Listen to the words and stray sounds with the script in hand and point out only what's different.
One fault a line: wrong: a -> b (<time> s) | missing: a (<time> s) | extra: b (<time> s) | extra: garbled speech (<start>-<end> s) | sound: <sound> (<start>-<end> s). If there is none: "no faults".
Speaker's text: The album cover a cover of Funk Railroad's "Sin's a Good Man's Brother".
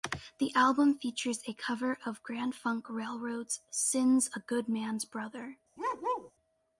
wrong: cover -> features (1.0 s)
extra: Grand (2.2 s)
sound: bark (5.8-6.3 s)